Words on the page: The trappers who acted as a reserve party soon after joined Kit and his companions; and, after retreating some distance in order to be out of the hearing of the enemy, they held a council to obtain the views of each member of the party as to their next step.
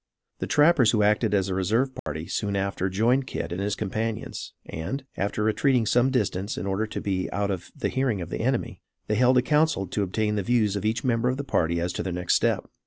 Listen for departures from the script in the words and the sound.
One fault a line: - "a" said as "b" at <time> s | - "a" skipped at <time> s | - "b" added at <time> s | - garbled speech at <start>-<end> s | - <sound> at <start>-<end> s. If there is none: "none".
- dropout at 2.0-2.1 s